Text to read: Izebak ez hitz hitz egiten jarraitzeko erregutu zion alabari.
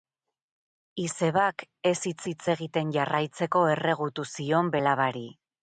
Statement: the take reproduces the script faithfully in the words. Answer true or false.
true